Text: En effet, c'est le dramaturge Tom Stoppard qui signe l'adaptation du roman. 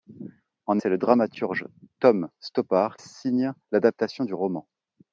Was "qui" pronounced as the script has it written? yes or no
no